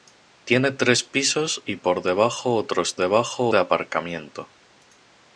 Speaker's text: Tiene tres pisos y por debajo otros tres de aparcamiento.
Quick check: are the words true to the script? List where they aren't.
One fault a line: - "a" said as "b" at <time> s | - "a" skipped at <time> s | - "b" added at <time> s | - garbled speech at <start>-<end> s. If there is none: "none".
- "tres" said as "debajo" at 2.9 s